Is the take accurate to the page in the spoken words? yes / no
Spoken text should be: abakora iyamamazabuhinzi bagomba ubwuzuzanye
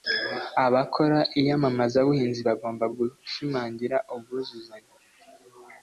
no